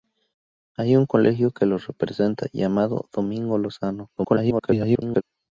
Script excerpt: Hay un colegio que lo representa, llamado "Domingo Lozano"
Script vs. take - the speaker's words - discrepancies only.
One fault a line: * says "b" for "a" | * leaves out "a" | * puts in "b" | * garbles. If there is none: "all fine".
* garbles